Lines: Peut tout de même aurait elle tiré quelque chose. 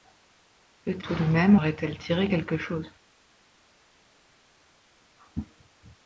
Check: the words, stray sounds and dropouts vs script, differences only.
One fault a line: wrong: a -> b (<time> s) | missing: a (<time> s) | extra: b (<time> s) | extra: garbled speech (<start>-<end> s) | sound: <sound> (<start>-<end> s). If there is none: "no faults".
no faults